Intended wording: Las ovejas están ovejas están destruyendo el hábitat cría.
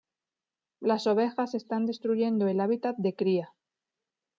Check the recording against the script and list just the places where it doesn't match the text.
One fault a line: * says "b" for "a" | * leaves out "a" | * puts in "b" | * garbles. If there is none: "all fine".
* leaves out "ovejas están"
* puts in "de"